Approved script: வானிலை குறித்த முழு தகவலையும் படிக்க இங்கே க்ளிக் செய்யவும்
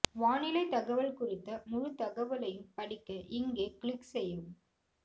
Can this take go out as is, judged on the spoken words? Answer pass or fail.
fail